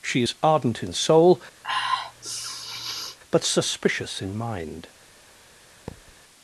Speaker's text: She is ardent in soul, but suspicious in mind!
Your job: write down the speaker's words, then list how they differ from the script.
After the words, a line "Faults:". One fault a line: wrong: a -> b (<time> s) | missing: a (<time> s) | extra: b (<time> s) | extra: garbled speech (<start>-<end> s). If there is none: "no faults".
She is ardent in soul, but suspicious in mind!
Faults:
no faults